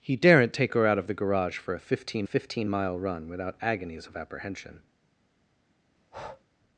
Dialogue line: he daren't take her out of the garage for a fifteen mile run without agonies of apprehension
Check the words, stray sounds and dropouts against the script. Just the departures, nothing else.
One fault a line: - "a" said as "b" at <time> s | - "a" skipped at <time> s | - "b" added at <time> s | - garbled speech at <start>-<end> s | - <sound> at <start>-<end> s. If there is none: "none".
- "fifteen" added at 2.2 s
- breath at 6.0-6.4 s